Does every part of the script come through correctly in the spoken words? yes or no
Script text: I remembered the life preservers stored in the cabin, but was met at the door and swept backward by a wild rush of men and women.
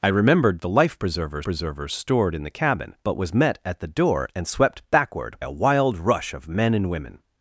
no